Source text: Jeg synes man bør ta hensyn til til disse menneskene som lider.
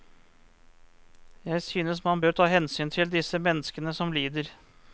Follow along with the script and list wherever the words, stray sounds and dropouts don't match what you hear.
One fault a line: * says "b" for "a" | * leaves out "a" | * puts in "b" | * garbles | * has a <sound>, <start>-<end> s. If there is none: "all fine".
* leaves out "til"